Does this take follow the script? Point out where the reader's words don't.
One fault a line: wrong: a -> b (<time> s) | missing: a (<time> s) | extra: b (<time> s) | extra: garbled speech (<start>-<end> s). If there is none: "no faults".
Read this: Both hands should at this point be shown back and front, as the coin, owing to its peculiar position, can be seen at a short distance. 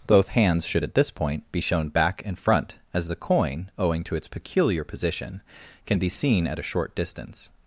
no faults